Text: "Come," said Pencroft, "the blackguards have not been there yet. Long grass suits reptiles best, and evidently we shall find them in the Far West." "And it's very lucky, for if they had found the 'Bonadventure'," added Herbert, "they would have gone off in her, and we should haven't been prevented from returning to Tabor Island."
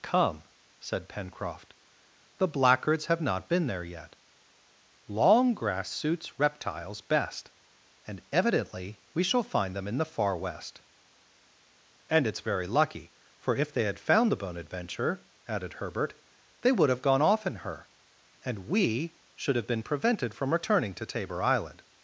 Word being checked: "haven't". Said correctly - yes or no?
no